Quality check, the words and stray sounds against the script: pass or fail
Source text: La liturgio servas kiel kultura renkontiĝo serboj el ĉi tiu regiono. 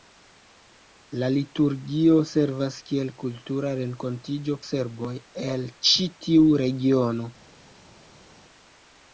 pass